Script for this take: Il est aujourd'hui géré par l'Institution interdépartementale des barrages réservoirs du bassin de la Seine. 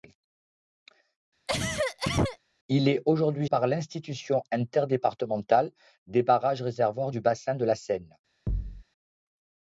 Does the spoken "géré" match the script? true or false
false